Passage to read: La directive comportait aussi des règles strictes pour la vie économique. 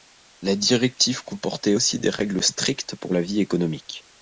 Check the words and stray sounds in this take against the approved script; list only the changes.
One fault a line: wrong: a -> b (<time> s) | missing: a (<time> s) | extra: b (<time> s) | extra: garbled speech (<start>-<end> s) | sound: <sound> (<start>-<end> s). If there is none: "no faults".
no faults